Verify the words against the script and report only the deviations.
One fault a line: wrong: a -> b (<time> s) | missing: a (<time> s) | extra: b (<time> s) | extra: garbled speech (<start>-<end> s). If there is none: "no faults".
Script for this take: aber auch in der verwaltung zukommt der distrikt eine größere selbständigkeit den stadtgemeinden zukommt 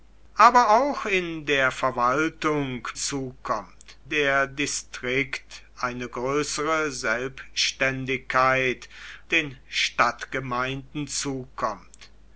no faults